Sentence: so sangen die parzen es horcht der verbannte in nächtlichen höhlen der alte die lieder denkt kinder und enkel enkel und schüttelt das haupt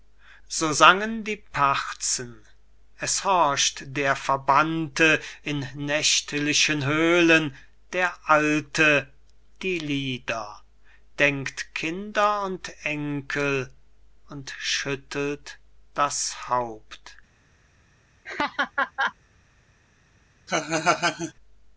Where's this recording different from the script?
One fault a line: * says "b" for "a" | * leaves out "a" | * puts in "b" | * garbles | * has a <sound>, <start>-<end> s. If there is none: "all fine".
* leaves out "enkel"
* has a laugh, 18.3-19.2 s
* has a laugh, 20.5-21.3 s